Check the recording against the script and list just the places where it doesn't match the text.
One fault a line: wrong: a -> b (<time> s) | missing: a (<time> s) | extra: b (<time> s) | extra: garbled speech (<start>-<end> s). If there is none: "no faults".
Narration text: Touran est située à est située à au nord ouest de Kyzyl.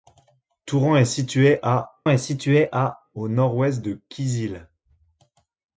no faults